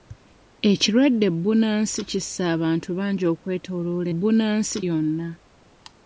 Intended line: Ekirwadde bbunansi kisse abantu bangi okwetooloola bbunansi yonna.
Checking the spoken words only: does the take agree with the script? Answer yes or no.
yes